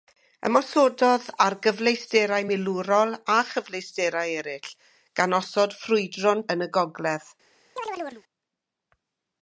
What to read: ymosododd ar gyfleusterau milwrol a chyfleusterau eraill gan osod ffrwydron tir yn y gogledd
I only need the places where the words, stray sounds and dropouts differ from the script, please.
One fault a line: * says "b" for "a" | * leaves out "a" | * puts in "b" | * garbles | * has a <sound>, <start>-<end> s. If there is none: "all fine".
* leaves out "tir"
* has a chirp, 7.8-8.2 s